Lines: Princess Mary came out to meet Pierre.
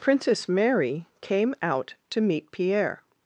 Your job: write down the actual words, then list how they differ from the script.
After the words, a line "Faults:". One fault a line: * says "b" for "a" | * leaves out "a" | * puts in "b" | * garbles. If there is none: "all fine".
Princess Mary came out to meet Pierre.
Faults:
all fine